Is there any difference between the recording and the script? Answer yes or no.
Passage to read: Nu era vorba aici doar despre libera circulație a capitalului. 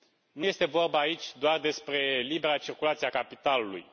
yes